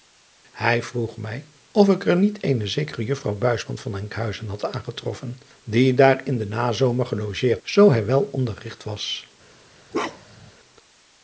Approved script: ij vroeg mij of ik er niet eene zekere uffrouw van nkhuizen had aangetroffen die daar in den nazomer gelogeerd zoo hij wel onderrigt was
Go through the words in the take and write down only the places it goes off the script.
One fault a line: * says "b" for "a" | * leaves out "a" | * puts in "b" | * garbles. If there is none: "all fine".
all fine